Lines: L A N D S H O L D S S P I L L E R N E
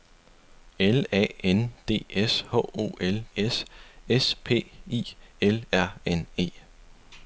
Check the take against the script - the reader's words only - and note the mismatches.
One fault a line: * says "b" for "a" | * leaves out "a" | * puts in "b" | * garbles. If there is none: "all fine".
* leaves out "D"
* leaves out "L E"